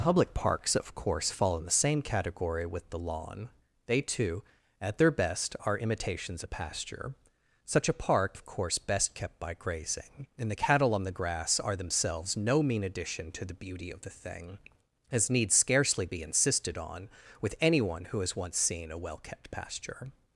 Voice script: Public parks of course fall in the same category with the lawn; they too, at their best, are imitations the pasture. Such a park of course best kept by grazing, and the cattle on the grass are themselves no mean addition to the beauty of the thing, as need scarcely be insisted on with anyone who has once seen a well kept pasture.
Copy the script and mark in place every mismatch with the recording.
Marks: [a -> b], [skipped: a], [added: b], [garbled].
Public parks of course fall in the same category with the lawn; they too, at their best, are imitations the pasture. Such a park of course best kept by grazing, and the cattle on the grass are themselves no mean addition to the beauty of the thing, as need scarcely be insisted on with anyone who has once seen a well kept pasture.